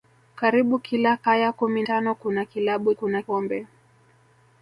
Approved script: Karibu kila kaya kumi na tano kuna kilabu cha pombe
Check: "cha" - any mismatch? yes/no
yes